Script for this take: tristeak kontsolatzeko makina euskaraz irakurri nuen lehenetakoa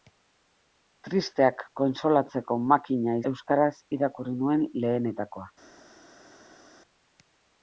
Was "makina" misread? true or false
false